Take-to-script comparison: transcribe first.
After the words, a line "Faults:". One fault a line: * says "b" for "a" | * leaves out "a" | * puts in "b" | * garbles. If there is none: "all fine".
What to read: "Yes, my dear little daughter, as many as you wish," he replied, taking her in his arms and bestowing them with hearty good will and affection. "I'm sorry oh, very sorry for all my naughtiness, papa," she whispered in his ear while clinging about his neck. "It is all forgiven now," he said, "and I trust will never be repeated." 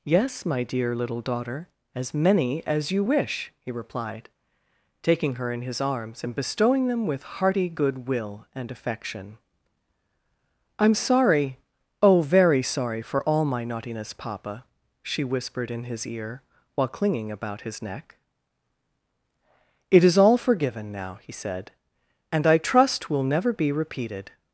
"Yes, my dear little daughter, as many as you wish," he replied, taking her in his arms and bestowing them with hearty good will and affection. "I'm sorry oh, very sorry for all my naughtiness, papa," she whispered in his ear while clinging about his neck. "It is all forgiven now," he said, "and I trust will never be repeated."
Faults:
all fine